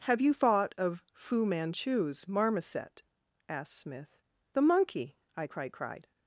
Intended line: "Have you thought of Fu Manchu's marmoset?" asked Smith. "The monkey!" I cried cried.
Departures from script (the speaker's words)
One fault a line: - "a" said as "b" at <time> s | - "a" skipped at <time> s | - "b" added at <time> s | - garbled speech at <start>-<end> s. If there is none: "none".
none